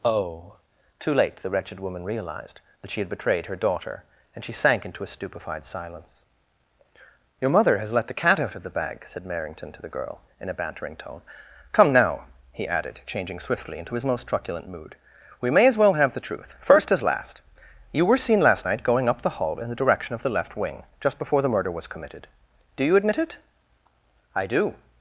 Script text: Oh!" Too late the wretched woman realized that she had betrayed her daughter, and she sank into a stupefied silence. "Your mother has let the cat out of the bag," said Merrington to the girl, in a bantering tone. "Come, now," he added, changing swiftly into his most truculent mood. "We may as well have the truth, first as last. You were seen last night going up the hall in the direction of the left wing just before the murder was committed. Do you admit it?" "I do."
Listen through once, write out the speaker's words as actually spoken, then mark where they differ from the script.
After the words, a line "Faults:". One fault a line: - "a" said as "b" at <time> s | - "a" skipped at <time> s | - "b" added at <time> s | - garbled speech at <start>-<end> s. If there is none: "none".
Oh!" Too late the wretched woman realized that she had betrayed her daughter, and she sank into a stupefied silence. "Your mother has let the cat out of the bag," said Merrington to the girl, in a bantering tone. "Come, now," he added, changing swiftly into his most truculent mood. "We may as well have the truth, first as last. You were seen last night going up the hall in the direction of the left wing just before the murder was committed. Do you admit it?" "I do."
Faults:
none